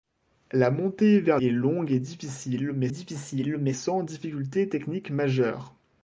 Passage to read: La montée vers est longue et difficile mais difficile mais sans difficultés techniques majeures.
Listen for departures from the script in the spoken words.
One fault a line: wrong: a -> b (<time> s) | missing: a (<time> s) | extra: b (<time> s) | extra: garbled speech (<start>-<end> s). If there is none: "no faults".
no faults